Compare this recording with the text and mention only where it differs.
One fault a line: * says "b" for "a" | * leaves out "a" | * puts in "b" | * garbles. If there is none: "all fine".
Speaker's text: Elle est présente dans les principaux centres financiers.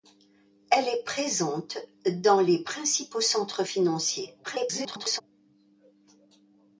* garbles